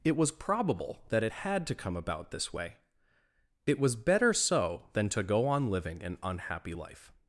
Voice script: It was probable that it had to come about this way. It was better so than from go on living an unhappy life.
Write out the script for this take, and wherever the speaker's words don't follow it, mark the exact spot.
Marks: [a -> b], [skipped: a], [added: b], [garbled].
It was probable that it had to come about this way. It was better so than [from -> to] go on living an unhappy life.